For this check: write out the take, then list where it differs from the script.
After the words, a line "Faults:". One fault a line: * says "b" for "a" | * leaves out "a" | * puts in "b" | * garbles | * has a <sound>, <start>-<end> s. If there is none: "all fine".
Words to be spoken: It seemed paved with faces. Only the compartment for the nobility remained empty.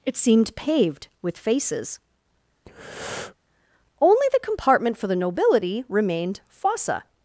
It seemed paved with faces. Only the compartment for the nobility remained fossa.
Faults:
* has a breath, 2.7-3.4 s
* says "fossa" for "empty"